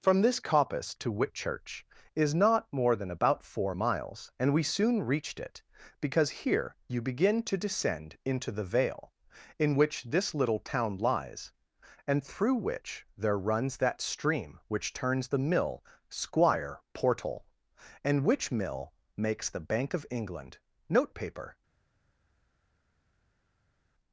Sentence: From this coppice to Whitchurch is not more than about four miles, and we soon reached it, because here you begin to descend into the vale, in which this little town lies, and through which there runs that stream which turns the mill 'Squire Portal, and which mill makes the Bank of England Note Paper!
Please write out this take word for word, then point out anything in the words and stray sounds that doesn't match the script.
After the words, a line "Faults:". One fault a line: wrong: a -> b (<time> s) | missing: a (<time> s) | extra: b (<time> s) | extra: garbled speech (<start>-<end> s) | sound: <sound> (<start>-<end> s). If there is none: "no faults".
From this coppice to Whitchurch is not more than about four miles, and we soon reached it, because here you begin to descend into the vale, in which this little town lies, and through which there runs that stream which turns the mill 'Squire Portal, and which mill makes the Bank of England Note Paper!
Faults:
no faults